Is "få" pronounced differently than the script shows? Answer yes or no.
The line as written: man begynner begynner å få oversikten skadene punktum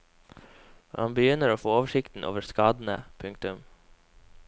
no